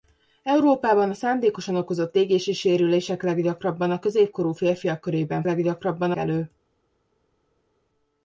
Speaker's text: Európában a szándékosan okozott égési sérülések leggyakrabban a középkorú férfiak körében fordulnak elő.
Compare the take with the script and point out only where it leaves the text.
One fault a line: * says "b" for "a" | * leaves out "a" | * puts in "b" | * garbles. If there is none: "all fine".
* says "leggyakrabban" for "fordulnak"